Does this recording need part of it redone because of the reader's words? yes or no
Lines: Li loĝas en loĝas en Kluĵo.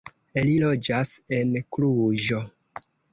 yes